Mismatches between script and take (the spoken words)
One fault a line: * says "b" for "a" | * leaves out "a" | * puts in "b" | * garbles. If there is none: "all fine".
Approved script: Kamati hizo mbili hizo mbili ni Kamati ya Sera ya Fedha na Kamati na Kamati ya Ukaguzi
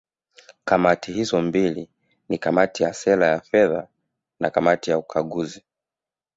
* leaves out "hizo mbili"
* leaves out "na Kamati"